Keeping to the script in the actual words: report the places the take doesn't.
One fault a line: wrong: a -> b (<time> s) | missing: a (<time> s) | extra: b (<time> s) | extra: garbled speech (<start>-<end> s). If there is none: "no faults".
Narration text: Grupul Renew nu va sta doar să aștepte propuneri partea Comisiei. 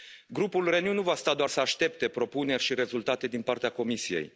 extra: și rezultate din (2.6 s)